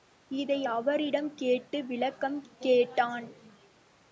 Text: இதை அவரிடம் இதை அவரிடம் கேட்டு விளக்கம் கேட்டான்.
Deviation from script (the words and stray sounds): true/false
true